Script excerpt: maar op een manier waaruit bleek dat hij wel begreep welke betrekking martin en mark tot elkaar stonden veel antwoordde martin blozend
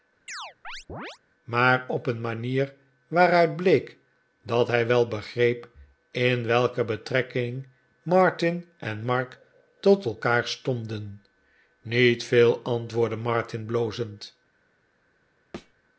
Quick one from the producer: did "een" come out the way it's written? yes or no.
yes